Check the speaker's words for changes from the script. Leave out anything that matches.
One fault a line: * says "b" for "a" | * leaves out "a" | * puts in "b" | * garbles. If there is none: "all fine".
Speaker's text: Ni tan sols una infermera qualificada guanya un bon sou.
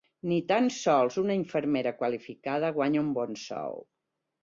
all fine